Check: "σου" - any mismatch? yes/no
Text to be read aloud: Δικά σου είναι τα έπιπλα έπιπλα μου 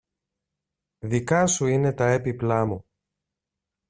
no